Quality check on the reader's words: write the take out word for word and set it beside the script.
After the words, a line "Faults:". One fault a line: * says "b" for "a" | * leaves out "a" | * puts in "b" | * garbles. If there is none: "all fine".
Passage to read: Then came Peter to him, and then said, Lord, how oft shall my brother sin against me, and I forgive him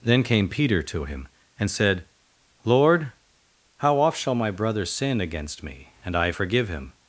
Then came Peter to him, and said, Lord, how oft shall my brother sin against me, and I forgive him
Faults:
* leaves out "then"